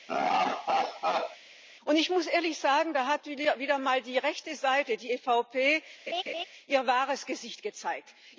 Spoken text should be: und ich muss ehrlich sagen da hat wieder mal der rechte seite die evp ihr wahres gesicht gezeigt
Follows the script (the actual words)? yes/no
no